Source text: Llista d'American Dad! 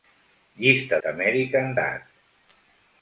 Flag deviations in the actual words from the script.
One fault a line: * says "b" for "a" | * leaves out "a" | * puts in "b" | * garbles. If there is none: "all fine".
all fine